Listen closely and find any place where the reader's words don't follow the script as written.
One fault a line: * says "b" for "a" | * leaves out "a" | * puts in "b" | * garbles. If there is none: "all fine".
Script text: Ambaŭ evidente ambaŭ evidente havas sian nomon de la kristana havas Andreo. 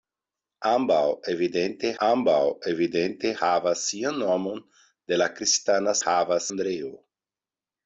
all fine